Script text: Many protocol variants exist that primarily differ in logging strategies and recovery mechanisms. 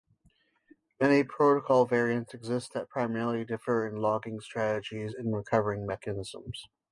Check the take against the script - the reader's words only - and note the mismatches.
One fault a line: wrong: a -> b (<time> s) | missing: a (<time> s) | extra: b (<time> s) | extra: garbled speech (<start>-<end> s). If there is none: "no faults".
no faults